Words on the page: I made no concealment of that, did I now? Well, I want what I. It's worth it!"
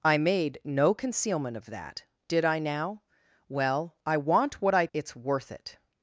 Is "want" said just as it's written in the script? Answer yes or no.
yes